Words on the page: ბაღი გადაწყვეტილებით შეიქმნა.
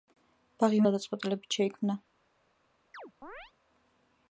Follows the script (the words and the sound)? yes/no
no